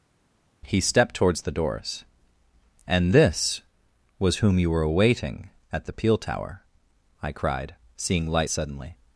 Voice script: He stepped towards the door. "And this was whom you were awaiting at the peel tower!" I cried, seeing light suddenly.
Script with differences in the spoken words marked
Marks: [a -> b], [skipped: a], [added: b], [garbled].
He stepped towards the [door. -> doors] "And this was whom you were awaiting at the peel tower!" I cried, seeing light suddenly.